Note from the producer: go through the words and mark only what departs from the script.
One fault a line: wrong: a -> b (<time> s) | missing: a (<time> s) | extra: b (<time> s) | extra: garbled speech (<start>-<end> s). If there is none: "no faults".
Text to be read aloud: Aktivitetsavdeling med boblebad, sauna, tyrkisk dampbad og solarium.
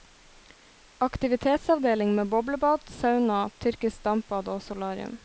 no faults